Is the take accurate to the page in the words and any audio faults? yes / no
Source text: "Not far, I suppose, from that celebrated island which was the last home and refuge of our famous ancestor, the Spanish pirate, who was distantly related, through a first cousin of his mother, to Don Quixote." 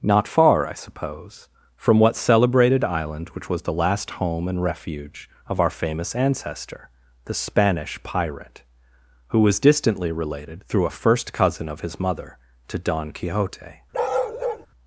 no